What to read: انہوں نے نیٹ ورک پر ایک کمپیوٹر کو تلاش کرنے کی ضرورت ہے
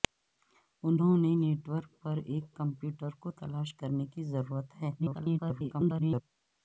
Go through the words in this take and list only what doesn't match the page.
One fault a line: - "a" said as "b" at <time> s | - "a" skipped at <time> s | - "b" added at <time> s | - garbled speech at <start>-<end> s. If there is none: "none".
- garbled speech at 5.0-6.2 s